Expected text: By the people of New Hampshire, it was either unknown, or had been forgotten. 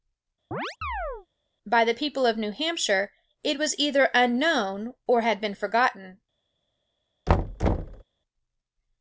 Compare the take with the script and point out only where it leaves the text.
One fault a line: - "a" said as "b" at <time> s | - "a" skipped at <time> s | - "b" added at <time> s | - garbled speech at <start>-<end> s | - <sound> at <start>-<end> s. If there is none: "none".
- chirp at 0.5-1.3 s
- thud at 7.3-8.0 s